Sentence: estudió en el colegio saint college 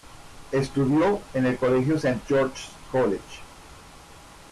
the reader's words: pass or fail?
fail